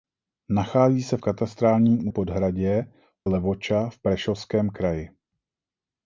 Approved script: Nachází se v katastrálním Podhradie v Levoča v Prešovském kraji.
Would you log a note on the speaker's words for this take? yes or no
no